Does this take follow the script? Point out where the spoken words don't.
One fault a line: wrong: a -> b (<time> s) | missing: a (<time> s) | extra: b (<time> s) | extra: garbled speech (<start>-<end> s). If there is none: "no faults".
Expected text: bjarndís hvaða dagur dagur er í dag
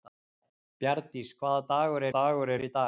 no faults